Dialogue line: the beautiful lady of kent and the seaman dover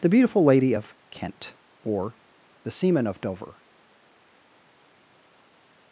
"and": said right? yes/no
no